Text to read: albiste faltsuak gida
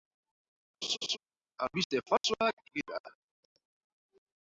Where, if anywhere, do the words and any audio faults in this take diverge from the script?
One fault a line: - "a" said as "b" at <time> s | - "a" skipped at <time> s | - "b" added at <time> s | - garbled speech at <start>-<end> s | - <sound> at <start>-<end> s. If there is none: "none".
- laugh at 0.8-1.2 s
- dropout at 2.2-2.2 s